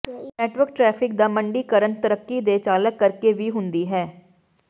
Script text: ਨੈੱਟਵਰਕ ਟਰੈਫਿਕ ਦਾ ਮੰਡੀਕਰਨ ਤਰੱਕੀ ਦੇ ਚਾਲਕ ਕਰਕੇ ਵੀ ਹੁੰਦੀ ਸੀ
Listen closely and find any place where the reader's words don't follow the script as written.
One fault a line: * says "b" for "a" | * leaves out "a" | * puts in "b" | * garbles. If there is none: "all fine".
* says "ਹੈ" for "ਸੀ"